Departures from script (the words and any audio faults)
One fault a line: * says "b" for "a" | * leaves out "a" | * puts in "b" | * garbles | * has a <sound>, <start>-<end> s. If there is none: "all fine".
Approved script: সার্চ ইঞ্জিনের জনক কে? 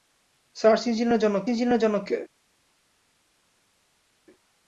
* puts in "ইঞ্জিনের জনক"